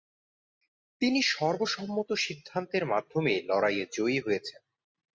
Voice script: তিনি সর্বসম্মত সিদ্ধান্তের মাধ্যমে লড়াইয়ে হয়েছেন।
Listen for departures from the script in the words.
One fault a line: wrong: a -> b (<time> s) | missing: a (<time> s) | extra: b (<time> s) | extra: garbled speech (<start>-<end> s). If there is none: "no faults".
extra: জয়ী (3.9 s)